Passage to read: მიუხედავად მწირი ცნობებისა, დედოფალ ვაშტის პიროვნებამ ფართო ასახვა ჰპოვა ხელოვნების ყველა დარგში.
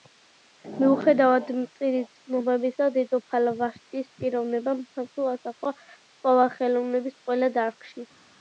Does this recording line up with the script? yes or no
yes